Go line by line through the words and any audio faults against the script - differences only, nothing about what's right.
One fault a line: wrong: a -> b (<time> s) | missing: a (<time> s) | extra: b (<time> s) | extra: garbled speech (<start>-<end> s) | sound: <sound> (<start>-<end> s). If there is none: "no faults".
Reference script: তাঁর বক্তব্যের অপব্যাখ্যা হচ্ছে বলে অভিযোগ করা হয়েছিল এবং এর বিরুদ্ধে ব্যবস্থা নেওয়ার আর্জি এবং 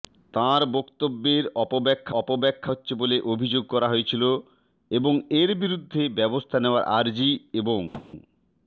extra: অপব্যাখ্যা (2.2 s)
sound: thud (7.9-8.1 s)